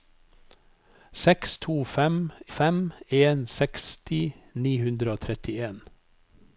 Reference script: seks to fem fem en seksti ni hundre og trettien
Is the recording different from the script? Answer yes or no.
no